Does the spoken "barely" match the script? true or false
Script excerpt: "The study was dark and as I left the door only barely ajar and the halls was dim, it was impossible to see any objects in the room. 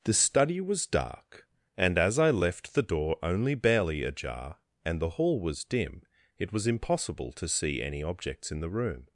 true